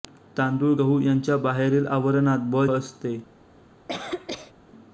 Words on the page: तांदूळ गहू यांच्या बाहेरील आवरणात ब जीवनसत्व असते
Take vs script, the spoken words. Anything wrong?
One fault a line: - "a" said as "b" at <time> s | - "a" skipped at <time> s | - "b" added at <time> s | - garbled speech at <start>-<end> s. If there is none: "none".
- "जीवनसत्व" skipped at 2.6 s